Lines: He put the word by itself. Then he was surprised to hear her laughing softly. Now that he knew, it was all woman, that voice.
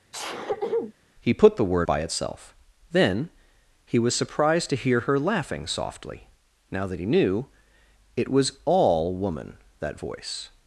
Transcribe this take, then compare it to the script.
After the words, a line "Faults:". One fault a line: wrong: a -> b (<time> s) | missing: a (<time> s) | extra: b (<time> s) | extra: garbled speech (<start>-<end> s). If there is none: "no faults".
He put the word by itself. Then he was surprised to hear her laughing softly. Now that he knew, it was all woman, that voice.
Faults:
no faults